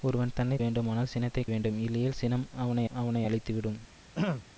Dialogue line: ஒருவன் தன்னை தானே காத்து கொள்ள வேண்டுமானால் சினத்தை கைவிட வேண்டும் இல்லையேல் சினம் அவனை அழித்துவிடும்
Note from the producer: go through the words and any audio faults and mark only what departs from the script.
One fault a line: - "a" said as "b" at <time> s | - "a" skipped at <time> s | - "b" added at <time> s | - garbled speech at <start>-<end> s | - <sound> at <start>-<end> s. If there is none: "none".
- "தானே காத்து கொள்ள" skipped at 0.6 s
- "கைவிட" skipped at 1.4 s
- "அவனை" added at 2.9 s
- throat clearing at 4.1-4.5 s